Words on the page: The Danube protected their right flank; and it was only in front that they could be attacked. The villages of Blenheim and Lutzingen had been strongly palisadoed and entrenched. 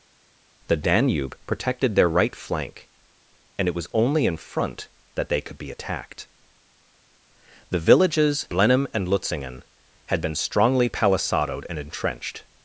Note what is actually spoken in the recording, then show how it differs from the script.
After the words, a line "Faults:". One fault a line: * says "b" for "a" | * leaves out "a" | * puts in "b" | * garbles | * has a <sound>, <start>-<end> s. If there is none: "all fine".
The Danube protected their right flank; and it was only in front that they could be attacked. The villages Blenheim and Lutzingen had been strongly palisadoed and entrenched.
Faults:
* leaves out "of"